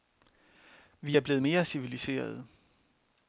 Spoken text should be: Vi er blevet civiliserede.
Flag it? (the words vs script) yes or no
yes